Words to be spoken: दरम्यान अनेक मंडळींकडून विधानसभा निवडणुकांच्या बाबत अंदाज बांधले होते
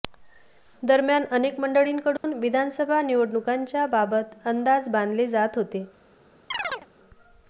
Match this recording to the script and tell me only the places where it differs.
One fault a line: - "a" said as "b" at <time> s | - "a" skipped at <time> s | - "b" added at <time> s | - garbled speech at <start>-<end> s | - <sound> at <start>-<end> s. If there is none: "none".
- dropout at 2.2-2.2 s
- "जात" added at 5.3 s
- chirp at 6.5-6.9 s